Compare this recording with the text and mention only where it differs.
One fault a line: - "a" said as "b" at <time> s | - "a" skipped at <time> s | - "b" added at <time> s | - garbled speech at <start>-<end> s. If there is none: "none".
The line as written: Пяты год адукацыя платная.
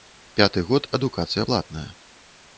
none